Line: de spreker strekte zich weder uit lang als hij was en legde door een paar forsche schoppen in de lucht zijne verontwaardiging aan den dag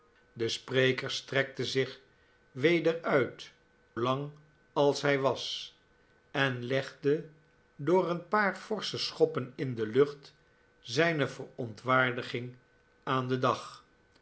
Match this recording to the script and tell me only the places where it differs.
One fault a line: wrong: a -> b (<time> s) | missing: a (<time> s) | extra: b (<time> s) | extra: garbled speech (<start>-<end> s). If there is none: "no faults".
no faults